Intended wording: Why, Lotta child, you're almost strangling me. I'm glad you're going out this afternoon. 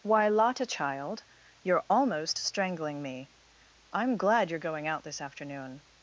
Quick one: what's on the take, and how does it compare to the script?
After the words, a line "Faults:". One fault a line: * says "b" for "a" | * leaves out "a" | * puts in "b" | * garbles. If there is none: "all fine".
Why, Lotta child, you're almost strangling me. I'm glad you're going out this afternoon.
Faults:
all fine